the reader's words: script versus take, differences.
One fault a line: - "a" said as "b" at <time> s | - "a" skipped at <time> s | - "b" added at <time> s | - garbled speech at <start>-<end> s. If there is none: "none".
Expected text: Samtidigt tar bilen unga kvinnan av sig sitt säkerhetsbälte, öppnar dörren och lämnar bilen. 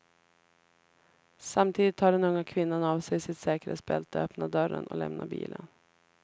- "bilen" said as "den" at 2.1 s